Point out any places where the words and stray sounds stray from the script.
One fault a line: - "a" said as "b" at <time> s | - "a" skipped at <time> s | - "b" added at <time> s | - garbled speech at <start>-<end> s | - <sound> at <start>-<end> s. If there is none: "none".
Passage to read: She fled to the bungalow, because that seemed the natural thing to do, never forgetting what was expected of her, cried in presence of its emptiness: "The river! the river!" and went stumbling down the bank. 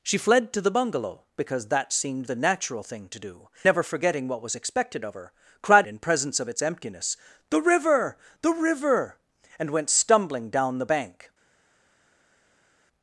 none